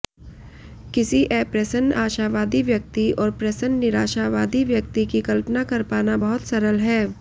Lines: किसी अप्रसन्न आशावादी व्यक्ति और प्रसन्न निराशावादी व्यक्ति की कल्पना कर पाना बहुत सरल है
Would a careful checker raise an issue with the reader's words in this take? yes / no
no